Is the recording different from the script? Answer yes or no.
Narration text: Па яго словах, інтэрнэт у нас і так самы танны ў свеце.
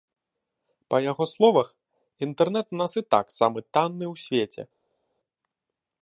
no